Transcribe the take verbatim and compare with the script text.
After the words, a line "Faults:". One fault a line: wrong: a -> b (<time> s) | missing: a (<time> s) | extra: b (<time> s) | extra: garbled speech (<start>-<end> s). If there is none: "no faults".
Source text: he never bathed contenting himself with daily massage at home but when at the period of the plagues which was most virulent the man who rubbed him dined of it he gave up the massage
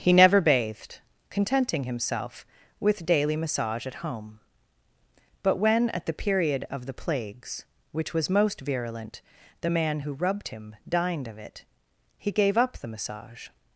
he never bathed contenting himself with daily massage at home but when at the period of the plagues which was most virulent the man who rubbed him dined of it he gave up the massage
Faults:
no faults